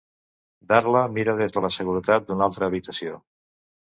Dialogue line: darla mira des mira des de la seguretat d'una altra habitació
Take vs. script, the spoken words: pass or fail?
fail